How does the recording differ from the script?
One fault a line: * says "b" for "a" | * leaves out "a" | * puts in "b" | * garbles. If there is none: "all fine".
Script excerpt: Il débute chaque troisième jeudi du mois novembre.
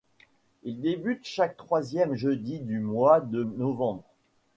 * puts in "de"